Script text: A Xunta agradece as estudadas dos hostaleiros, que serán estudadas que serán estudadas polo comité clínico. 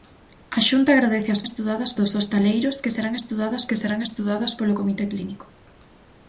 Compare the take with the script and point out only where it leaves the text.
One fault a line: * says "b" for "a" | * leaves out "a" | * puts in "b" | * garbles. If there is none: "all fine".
all fine